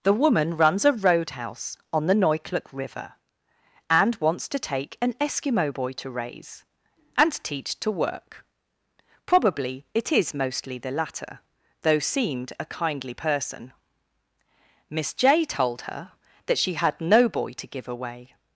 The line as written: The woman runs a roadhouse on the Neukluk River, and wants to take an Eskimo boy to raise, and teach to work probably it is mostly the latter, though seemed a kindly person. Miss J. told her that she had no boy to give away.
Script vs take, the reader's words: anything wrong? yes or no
no